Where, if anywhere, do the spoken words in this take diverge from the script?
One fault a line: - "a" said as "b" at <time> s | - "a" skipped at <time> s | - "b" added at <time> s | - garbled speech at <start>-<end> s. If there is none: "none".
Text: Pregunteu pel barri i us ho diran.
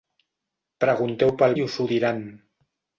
- "barri" skipped at 1.5 s